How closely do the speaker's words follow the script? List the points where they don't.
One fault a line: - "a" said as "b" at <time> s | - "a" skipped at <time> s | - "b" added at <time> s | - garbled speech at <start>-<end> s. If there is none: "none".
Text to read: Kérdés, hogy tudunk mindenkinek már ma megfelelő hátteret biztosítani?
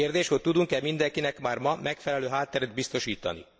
- "e" added at 0.7 s